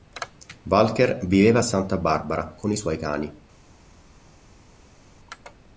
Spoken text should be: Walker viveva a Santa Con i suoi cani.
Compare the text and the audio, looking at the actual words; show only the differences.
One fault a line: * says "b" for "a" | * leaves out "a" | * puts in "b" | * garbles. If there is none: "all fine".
* puts in "Barbara"